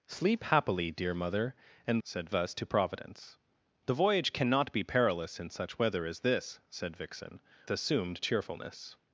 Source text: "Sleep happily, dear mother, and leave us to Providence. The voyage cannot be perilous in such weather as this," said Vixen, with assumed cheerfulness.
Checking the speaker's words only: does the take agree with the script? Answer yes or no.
no